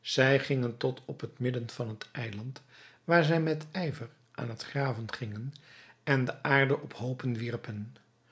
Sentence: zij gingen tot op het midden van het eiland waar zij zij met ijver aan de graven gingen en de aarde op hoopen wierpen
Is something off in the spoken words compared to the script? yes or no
yes